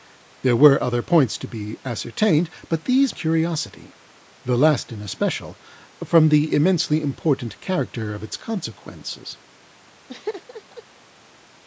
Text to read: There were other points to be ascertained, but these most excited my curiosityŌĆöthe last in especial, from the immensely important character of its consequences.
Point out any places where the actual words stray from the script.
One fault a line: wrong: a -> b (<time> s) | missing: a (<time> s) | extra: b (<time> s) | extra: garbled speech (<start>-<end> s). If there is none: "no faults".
missing: most excited my (3.1 s)